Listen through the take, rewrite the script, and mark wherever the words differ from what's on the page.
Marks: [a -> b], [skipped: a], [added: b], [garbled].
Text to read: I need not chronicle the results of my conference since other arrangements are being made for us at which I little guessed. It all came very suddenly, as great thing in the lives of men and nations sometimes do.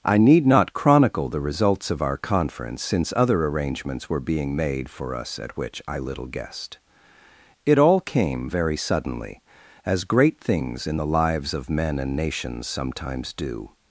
I need not chronicle the results of [my -> our] conference since other arrangements [are -> were] being made for us at which I little guessed. It all came very suddenly, as great [thing -> things] in the lives of men and nations sometimes do.